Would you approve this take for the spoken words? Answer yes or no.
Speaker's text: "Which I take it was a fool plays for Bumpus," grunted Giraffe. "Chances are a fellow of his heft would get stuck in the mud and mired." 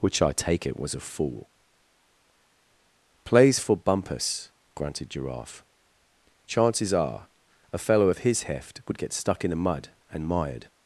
yes